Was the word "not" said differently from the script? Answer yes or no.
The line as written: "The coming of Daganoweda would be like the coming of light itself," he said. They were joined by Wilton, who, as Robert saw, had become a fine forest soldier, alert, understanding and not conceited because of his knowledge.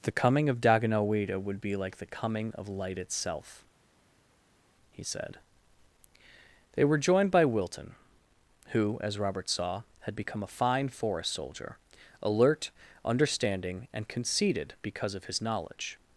yes